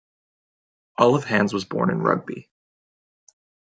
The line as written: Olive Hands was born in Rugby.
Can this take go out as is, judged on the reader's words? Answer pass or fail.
pass